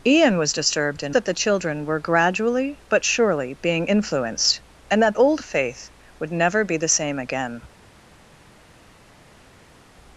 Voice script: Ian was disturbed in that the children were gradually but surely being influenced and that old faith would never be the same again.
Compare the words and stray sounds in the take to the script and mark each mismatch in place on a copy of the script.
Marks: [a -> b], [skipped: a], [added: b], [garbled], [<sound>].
Ian was disturbed in that the children were gradually but surely being influenced and that old faith would never be the same again.